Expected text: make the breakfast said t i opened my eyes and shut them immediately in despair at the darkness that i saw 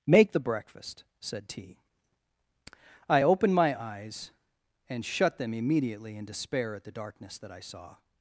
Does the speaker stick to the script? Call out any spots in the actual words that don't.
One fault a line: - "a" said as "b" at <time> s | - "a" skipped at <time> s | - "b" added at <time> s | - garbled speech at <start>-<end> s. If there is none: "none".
none